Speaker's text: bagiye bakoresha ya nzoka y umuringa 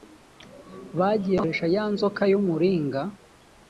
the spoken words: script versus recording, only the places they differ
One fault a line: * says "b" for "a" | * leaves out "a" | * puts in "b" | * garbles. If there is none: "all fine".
all fine